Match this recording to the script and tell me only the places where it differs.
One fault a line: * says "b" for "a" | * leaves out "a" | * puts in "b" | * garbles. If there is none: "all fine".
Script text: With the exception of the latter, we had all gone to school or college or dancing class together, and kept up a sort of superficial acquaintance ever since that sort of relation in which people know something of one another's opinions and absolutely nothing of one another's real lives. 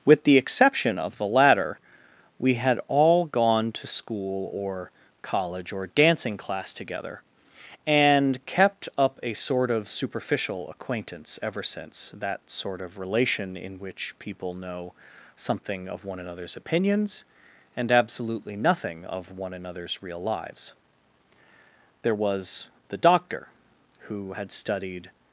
* puts in "There was the Doctor who had studied"